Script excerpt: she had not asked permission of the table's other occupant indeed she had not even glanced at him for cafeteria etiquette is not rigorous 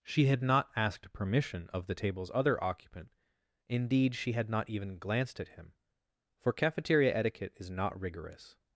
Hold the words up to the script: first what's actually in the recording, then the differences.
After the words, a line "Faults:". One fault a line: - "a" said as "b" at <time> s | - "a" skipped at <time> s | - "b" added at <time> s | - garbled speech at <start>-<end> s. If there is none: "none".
she had not asked permission of the table's other occupant indeed she had not even glanced at him for cafeteria etiquette is not rigorous
Faults:
none